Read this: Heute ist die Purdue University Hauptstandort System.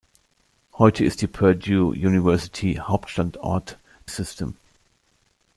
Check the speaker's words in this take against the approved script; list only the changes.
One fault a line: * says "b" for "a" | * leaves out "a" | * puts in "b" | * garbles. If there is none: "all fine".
all fine